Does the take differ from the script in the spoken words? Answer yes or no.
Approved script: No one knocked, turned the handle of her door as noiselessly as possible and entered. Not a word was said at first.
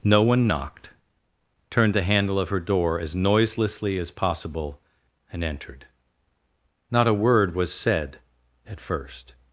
no